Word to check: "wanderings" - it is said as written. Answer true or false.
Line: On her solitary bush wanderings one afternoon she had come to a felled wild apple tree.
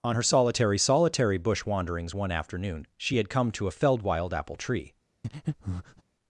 true